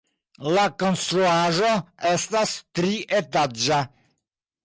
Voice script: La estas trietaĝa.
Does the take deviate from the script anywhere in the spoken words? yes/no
yes